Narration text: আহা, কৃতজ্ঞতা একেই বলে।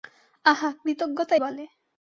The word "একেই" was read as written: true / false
false